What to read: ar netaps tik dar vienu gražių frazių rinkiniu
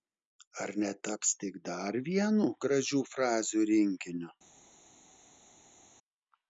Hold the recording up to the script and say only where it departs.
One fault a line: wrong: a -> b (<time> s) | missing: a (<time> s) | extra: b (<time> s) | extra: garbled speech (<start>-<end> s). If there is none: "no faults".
no faults